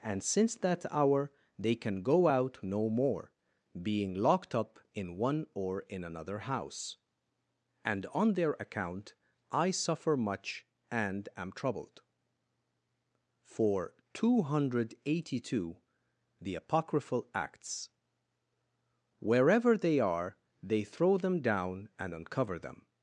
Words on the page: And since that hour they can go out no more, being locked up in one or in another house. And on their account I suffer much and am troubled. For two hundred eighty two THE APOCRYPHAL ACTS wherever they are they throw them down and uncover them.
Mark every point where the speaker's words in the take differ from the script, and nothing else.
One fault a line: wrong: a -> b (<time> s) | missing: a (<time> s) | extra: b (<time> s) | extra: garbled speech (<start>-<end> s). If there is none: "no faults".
no faults